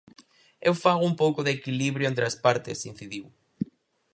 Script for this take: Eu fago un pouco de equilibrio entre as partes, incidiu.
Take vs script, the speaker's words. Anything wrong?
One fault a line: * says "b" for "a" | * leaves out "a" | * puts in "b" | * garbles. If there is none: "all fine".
all fine